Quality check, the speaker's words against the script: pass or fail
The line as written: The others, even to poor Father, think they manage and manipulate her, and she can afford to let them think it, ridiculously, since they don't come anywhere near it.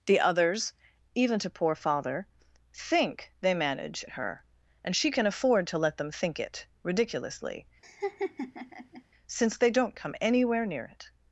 fail